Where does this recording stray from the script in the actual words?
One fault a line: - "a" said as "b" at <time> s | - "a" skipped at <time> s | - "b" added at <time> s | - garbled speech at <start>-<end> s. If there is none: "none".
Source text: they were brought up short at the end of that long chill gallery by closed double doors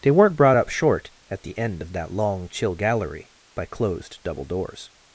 - "were" said as "weren't" at 0.1 s